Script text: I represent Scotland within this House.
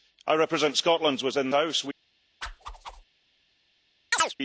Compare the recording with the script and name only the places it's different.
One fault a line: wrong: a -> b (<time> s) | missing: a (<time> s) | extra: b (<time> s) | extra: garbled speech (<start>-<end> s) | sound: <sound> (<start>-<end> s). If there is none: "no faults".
missing: this (1.5 s)
sound: whoosh (2.4-3.0 s)
sound: chirp (4.1-4.3 s)